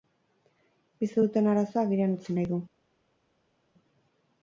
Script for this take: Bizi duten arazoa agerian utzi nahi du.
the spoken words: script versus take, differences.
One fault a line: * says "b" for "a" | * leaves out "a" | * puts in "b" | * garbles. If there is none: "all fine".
all fine